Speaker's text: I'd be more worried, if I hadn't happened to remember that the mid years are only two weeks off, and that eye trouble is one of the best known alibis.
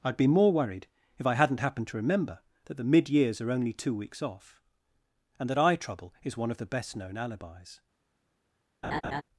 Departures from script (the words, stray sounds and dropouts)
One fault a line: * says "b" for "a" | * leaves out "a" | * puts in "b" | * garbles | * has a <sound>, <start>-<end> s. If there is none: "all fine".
* has a laugh, 8.8-9.2 s